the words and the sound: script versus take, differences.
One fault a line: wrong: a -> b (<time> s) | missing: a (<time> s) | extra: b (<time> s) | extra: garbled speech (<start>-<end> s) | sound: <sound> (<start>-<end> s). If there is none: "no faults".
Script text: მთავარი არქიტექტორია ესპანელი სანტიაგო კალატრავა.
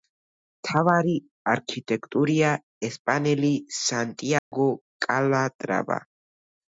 sound: dropout (4.4-4.5 s)